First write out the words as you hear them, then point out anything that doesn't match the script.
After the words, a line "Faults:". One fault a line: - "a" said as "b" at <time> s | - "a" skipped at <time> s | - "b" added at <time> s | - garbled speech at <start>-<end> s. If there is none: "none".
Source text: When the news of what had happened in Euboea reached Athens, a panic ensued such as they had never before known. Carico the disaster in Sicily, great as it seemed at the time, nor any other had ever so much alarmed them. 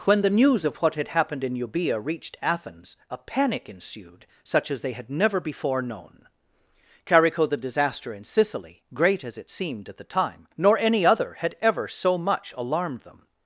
When the news of what had happened in Euboea reached Athens, a panic ensued such as they had never before known. Carico the disaster in Sicily, great as it seemed at the time, nor any other had ever so much alarmed them.
Faults:
none